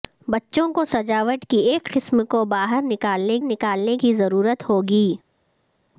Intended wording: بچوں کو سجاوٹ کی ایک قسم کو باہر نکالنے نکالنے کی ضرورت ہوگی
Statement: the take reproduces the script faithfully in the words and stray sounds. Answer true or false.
true